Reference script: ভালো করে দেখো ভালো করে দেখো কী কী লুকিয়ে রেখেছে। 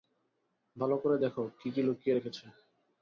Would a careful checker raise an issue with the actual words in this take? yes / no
yes